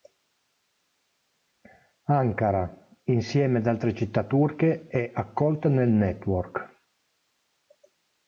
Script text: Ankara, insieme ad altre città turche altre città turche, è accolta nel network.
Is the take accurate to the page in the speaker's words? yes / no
no